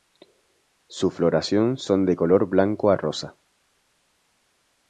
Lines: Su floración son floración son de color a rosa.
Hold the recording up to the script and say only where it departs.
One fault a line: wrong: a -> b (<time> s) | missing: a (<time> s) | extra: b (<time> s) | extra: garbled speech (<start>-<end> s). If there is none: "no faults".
missing: floración son (2.1 s)
extra: blanco (2.5 s)